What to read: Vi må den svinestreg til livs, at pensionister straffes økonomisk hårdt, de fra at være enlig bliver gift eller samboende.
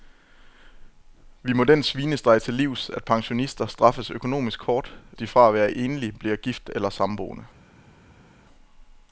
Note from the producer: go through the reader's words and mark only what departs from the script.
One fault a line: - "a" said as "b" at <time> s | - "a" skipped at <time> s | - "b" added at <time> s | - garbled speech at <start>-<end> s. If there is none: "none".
none